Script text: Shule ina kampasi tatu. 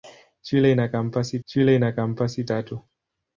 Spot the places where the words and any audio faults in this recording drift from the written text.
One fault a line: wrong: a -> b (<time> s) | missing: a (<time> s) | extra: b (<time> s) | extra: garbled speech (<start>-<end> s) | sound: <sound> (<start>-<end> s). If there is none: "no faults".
extra: shule ina kampasi (1.4 s)